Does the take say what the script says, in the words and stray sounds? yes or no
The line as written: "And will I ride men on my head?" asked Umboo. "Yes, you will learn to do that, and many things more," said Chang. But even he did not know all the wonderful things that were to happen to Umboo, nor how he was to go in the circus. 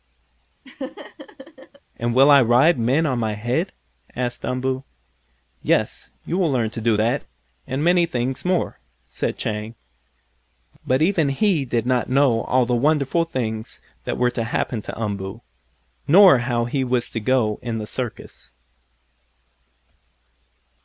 no